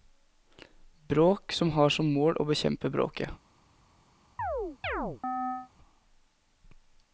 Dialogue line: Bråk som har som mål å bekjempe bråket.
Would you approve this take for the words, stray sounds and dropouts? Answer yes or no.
no